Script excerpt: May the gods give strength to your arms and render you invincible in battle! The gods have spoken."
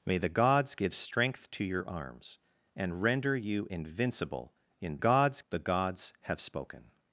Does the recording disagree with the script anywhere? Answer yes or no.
yes